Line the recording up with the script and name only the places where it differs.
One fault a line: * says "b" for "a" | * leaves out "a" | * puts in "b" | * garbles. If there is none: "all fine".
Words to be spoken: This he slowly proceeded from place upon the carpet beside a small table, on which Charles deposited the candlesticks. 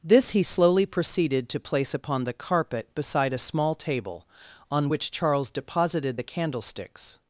* says "to" for "from"